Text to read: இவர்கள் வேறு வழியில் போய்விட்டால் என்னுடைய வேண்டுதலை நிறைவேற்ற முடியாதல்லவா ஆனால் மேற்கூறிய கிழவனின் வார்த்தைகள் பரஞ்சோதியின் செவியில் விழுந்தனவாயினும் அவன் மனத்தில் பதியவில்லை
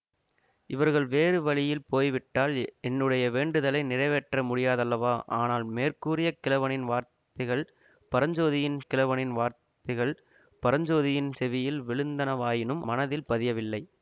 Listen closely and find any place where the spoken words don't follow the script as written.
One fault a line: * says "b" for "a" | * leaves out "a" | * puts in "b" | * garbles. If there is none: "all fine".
* puts in "கிழவனின் வார்த்தைகள் பரஞ்சோதியின்"
* leaves out "அவன்"